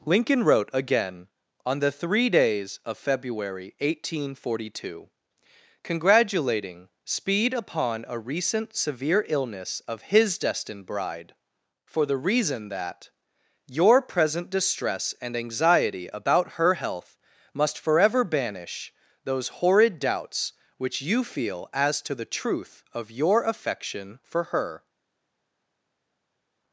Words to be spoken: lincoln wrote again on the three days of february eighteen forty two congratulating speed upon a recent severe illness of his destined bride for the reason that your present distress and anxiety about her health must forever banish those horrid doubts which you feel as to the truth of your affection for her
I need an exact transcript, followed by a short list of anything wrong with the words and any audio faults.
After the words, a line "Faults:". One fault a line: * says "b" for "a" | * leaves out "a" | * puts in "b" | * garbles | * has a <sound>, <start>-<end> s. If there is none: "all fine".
lincoln wrote again on the three days of february eighteen forty two congratulating speed upon a recent severe illness of his destined bride for the reason that your present distress and anxiety about her health must forever banish those horrid doubts which you feel as to the truth of your affection for her
Faults:
all fine